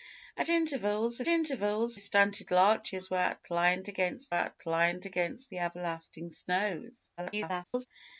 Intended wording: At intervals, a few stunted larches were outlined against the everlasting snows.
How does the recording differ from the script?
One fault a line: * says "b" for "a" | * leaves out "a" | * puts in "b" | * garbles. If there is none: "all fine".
* says "intervals" for "few"
* puts in "outlined against"
* garbles